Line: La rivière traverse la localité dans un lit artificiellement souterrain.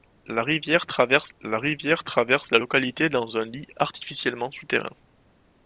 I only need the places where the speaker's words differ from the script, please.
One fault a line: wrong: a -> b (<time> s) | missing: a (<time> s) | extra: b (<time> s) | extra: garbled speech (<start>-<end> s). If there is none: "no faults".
extra: rivière traverse la (1.6 s)